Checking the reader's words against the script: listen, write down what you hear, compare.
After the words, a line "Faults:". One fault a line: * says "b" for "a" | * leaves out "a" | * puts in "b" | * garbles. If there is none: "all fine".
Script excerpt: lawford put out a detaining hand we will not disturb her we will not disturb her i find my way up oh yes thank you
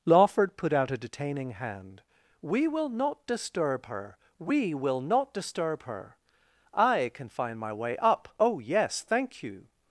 lawford put out a detaining hand we will not disturb her we will not disturb her i can find my way up oh yes thank you
Faults:
* puts in "can"